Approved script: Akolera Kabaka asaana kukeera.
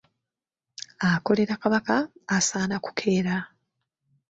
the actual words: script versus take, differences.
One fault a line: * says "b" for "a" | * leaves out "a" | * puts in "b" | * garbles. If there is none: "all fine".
all fine